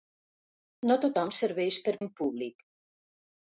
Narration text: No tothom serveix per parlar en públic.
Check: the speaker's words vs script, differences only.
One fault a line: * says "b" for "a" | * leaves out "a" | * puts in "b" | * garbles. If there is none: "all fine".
* leaves out "parlar"